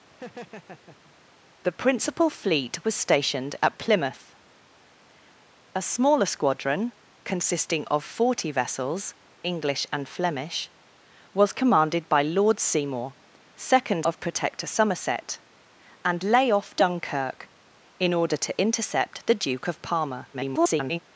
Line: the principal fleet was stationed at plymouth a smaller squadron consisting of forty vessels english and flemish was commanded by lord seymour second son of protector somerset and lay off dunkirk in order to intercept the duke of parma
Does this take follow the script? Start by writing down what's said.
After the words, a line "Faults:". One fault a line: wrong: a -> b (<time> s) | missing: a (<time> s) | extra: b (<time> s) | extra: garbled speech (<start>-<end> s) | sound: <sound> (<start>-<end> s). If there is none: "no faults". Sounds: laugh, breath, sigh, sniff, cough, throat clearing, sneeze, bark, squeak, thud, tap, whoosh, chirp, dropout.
the principal fleet was stationed at plymouth a smaller squadron consisting of forty vessels english and flemish was commanded by lord seymour second of protector somerset and lay off dunkirk in order to intercept the duke of parma [garbled]
Faults:
sound: laugh (0.1-1.2 s)
missing: son (14.1 s)
extra: garbled speech (20.3-21.0 s)